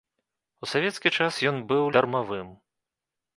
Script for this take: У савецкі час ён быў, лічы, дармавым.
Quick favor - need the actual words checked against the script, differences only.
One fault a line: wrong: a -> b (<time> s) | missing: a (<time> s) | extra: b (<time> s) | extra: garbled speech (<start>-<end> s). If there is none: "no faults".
missing: лічы (1.8 s)